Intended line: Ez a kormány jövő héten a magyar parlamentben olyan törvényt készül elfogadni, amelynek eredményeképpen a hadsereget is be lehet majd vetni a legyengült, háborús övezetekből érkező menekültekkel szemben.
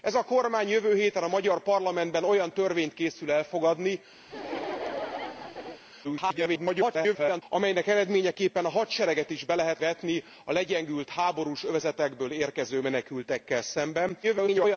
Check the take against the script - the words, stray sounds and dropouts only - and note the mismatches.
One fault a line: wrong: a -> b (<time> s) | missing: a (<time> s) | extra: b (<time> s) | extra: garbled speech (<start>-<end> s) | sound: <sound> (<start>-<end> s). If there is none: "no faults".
sound: laugh (4.3-5.8 s)
extra: garbled speech (6.0-7.4 s)
missing: majd (9.8 s)
extra: garbled speech (14.2-14.8 s)